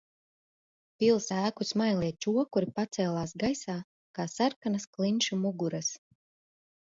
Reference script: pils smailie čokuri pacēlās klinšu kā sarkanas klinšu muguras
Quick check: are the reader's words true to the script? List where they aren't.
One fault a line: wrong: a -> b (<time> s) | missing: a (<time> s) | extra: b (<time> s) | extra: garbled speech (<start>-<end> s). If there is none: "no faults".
extra: ēku (1.4 s)
wrong: klinšu -> gaisā (3.4 s)